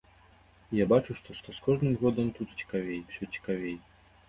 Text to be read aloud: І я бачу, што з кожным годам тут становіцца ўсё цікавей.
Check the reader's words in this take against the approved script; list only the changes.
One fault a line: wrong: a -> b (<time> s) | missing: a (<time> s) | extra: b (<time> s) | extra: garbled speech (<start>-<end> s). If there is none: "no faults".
extra: што (1.4 s)
wrong: становіцца -> цікавей (2.6 s)